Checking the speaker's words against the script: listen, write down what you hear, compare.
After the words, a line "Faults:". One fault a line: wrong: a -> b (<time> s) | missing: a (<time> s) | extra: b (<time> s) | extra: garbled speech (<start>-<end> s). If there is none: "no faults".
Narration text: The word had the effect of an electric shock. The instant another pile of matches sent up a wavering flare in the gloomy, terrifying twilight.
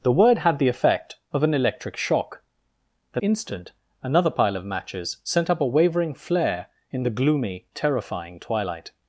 The word had the effect of an electric shock. The instant another pile of matches sent up a wavering flare in the gloomy, terrifying twilight.
Faults:
no faults